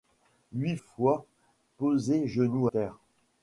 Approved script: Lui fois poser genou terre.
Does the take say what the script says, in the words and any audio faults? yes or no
yes